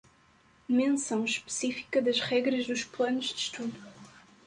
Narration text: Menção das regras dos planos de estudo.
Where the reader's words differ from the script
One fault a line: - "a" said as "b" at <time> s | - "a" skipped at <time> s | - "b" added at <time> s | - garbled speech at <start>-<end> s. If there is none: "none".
- "específica" added at 1.2 s